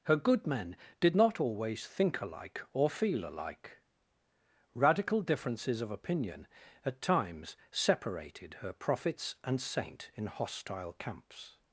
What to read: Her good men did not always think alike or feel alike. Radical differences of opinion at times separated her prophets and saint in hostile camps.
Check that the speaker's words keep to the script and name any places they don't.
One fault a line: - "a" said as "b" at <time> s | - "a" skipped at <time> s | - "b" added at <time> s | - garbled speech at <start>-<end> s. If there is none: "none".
none